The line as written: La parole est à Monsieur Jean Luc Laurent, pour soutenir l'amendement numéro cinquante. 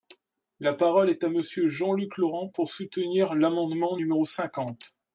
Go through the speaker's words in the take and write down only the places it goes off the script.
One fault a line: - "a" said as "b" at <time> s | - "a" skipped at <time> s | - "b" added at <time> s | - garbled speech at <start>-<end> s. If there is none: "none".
none